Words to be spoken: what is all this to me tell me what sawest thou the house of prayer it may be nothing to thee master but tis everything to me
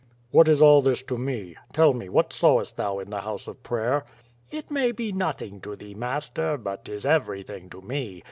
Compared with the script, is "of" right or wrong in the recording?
right